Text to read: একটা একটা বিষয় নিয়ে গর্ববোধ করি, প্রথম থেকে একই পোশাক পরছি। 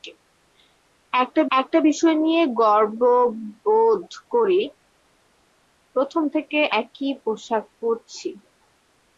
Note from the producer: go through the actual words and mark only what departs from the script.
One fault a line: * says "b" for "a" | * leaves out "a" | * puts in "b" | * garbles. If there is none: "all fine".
all fine